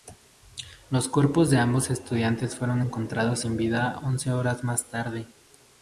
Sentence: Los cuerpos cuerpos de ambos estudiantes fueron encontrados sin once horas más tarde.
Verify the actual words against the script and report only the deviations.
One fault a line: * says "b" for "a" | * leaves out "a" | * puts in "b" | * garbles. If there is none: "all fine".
* leaves out "cuerpos"
* puts in "vida"